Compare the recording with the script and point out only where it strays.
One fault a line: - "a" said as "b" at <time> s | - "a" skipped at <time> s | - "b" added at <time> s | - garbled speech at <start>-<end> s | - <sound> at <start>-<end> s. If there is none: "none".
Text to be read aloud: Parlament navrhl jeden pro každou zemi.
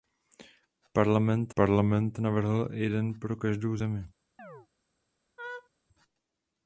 - "parlament" added at 1.5 s
- chirp at 4.4-4.7 s
- laugh at 5.4-5.7 s